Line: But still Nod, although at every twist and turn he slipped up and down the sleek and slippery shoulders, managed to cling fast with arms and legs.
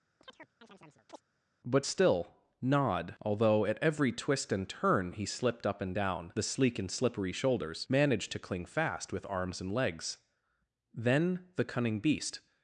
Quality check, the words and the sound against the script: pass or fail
fail